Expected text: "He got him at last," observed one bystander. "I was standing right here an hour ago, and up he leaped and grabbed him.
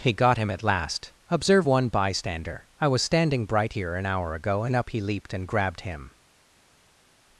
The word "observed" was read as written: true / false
false